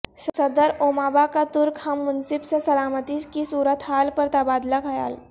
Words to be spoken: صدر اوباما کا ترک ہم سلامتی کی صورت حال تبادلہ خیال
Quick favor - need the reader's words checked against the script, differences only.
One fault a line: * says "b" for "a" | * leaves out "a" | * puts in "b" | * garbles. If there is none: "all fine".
* puts in "منصب سے"
* puts in "پر"